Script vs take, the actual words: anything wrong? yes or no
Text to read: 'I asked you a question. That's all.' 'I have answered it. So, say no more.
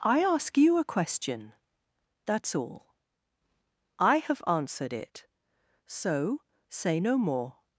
yes